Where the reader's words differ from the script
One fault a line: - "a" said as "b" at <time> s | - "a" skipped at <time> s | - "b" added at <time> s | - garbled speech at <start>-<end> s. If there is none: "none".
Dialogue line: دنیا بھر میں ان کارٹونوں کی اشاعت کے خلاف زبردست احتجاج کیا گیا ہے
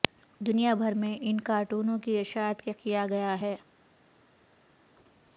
- "خلاف زبردست احتجاج" skipped at 2.7 s